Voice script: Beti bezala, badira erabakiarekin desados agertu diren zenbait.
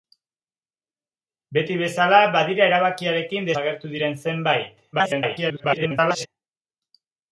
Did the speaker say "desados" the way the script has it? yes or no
no